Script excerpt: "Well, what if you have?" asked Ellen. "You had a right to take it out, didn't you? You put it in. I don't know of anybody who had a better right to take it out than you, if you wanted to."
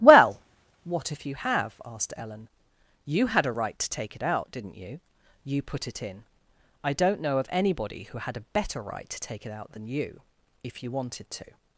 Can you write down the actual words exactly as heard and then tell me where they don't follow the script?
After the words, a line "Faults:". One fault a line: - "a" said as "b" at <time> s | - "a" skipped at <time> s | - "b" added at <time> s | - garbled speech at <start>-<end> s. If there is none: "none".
"Well, what if you have?" asked Ellen. "You had a right to take it out, didn't you? You put it in. I don't know of anybody who had a better right to take it out than you, if you wanted to."
Faults:
none